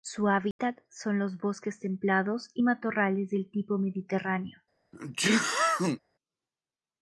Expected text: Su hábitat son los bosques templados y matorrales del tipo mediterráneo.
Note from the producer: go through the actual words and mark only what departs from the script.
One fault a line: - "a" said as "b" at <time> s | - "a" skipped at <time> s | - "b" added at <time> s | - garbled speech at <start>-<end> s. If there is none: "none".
none